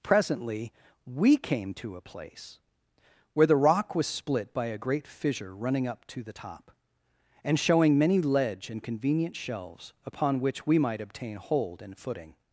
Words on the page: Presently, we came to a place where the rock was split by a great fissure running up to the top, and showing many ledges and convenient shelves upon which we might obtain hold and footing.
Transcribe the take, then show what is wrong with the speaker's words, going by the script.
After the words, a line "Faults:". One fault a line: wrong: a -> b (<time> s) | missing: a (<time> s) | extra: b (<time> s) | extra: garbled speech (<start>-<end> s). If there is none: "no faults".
Presently, we came to a place where the rock was split by a great fissure running up to the top, and showing many ledge and convenient shelves upon which we might obtain hold and footing.
Faults:
wrong: ledges -> ledge (8.2 s)